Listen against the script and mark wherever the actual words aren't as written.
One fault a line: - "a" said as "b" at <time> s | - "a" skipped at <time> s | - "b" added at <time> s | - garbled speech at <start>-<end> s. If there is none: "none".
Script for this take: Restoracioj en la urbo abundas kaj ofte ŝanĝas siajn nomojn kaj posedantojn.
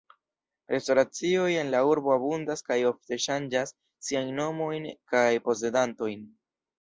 none